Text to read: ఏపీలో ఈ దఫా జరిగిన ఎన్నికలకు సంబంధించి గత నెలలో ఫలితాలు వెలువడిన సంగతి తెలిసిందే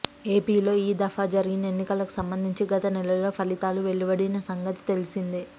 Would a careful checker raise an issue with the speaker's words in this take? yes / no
no